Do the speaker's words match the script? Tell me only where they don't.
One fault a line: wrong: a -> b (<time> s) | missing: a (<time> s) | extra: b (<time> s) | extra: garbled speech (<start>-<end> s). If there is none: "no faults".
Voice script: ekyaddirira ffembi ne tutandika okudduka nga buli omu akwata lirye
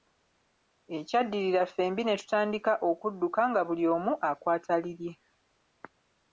no faults